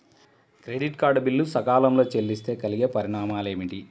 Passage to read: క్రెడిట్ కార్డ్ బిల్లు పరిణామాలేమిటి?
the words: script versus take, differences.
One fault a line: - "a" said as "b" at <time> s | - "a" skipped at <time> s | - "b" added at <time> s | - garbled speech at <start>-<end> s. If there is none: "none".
- "సకాలంలో చెల్లిస్తే కలిగే" added at 1.4 s